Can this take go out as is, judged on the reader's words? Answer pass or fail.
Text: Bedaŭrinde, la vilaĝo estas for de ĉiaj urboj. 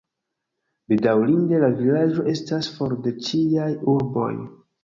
pass